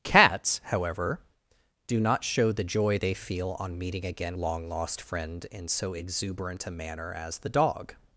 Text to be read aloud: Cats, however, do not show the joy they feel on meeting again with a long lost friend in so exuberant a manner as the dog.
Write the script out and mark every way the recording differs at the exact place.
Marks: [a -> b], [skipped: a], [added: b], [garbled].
Cats, however, do not show the joy they feel on meeting again [skipped: with a] long lost friend in so exuberant a manner as the dog.